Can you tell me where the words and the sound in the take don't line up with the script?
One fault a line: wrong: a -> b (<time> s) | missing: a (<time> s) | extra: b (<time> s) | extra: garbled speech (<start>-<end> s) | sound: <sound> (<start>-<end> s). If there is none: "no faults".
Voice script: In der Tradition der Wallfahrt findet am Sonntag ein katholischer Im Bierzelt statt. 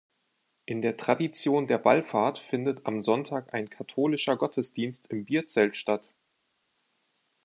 extra: Gottesdienst (4.3 s)